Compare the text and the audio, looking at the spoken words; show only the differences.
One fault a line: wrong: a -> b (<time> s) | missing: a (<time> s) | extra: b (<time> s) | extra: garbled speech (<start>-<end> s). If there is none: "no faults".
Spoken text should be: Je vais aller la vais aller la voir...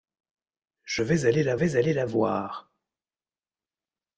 no faults